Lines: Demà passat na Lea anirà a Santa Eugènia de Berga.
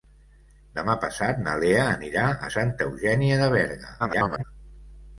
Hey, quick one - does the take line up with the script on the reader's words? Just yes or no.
no